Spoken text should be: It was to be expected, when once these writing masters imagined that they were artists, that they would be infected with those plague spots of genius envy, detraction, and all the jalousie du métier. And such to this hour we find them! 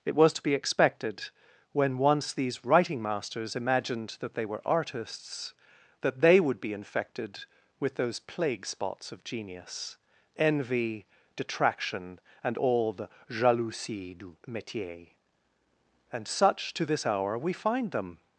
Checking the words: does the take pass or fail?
pass